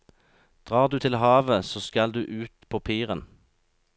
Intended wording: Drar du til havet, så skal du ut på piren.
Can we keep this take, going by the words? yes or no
yes